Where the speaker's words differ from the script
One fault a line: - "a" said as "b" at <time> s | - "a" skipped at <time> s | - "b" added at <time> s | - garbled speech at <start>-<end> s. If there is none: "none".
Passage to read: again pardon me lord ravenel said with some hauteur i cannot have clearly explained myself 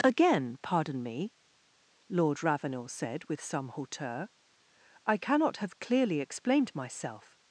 none